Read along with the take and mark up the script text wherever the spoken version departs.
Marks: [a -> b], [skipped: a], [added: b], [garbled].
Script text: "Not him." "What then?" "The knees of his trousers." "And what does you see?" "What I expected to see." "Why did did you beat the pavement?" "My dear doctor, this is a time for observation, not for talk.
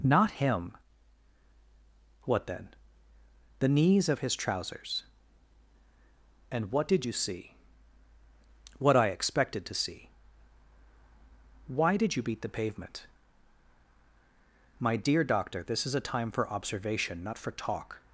"Not him." "What then?" "The knees of his trousers." "And what [does -> did] you see?" "What I expected to see." "Why did [skipped: did] you beat the pavement?" "My dear doctor, this is a time for observation, not for talk.